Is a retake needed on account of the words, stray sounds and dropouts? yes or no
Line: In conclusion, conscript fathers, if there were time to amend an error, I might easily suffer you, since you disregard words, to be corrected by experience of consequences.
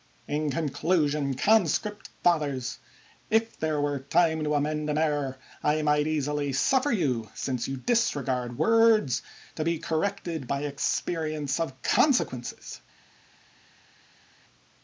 no